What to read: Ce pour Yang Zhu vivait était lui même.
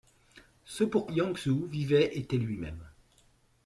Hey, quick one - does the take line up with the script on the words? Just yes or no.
yes